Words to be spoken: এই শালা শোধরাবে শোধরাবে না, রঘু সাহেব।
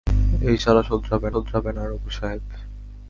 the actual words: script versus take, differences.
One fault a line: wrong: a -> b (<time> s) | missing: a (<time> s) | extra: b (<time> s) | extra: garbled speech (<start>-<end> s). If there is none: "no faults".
no faults